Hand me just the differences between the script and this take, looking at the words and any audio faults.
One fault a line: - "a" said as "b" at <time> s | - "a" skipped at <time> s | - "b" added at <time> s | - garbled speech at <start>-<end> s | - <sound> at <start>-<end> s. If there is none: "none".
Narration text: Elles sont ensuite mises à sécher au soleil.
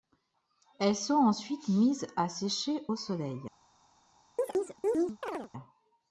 - chirp at 4.4-5.5 s